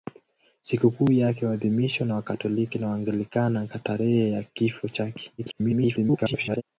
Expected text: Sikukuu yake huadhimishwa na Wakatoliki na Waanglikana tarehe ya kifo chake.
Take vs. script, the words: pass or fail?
fail